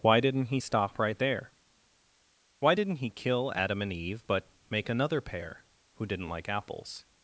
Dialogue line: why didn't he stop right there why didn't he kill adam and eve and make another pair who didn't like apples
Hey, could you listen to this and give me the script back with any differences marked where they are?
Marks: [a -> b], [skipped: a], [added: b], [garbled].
why didn't he stop right there why didn't he kill adam and eve [and -> but] make another pair who didn't like apples